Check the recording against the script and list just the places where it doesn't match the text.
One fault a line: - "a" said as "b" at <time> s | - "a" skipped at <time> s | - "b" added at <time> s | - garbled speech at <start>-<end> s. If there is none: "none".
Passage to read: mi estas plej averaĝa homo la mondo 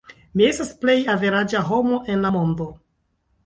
- "en" added at 2.2 s